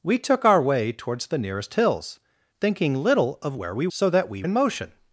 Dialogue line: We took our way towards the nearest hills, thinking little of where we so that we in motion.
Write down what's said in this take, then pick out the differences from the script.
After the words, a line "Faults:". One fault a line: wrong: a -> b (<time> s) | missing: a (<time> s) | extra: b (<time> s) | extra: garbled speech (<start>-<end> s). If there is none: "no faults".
We took our way towards the nearest hills, thinking little of where we so that we in motion.
Faults:
no faults